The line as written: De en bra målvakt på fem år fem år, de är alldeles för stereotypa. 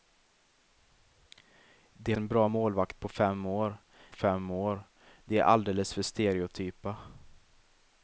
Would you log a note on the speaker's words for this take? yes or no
no